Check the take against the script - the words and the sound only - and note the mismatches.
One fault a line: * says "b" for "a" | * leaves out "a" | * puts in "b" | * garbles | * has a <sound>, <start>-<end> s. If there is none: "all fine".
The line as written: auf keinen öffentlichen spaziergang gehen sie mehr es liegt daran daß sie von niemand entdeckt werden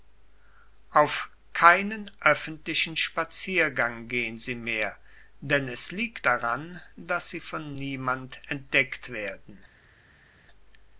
* puts in "denn"